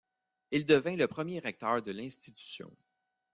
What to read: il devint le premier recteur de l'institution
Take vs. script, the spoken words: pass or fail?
pass